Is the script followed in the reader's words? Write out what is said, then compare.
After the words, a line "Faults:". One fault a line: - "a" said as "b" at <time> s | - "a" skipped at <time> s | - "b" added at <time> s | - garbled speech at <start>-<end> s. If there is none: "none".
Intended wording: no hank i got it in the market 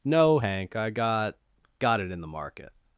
no hank i got got it in the market
Faults:
- "got" added at 1.8 s